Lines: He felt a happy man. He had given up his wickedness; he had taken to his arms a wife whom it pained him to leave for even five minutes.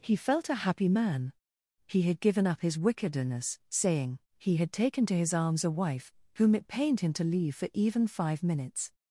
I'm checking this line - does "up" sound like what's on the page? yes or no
yes